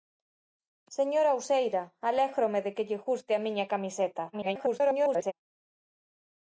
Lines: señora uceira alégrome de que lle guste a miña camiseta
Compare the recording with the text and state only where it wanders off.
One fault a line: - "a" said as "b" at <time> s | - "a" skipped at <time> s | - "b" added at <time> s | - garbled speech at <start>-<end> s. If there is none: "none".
- garbled speech at 4.3-5.3 s